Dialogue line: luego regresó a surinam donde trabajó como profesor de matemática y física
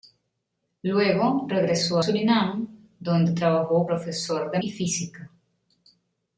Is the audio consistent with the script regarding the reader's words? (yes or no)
no